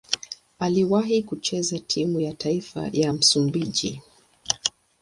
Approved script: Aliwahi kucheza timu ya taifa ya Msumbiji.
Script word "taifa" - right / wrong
right